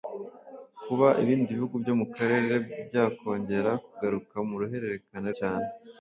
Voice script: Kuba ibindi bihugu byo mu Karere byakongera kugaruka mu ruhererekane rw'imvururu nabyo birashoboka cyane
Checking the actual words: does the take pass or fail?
fail